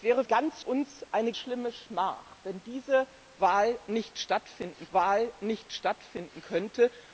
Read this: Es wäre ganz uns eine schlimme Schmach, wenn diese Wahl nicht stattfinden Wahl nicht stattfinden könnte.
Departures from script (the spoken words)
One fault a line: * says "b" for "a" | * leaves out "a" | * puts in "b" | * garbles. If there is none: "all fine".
all fine